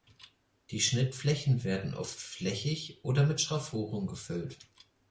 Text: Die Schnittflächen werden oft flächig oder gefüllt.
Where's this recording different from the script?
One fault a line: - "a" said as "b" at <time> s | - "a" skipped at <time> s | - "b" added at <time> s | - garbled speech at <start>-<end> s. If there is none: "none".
- "mit Schraffuren" added at 3.2 s